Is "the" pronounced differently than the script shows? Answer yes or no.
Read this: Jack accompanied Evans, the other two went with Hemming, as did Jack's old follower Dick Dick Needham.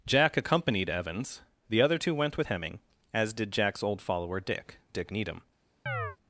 no